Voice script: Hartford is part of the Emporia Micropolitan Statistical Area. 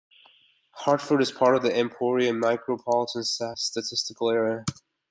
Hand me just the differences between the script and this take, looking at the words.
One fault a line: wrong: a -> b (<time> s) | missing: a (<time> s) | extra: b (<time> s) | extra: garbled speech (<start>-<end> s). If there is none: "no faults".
no faults